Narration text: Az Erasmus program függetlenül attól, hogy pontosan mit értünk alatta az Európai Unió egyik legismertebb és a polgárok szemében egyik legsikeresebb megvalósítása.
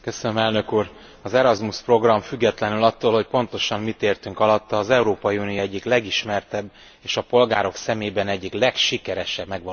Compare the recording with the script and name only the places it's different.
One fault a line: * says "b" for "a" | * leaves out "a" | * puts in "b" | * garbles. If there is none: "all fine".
all fine